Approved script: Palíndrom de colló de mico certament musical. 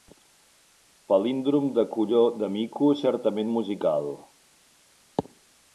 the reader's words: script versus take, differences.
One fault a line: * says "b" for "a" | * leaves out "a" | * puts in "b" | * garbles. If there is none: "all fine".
all fine